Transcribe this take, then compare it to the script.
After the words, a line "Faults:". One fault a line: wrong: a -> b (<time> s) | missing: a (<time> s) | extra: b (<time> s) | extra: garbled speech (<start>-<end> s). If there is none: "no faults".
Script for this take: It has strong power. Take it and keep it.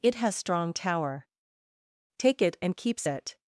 It has strong tower. Take it and keeps it.
Faults:
wrong: power -> tower (0.7 s)
wrong: keep -> keeps (2.8 s)